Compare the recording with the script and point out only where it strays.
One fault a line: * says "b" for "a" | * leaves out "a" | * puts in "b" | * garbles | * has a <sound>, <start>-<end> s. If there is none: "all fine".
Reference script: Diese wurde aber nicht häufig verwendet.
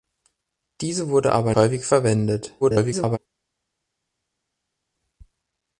* leaves out "nicht"
* garbles